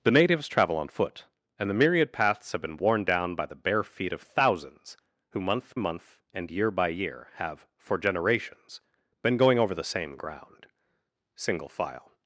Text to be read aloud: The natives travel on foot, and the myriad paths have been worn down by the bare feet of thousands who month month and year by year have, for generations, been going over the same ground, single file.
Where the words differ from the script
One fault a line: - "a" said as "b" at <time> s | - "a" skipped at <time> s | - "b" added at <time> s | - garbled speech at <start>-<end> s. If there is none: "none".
none